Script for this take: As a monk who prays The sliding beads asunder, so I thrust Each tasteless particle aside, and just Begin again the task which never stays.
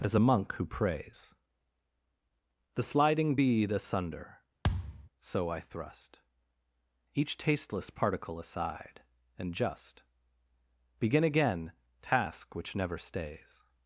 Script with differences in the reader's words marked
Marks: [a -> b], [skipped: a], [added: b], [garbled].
As a monk who prays The sliding [beads -> bead] asunder, so I thrust Each tasteless particle aside, and just Begin again [skipped: the] task which never stays.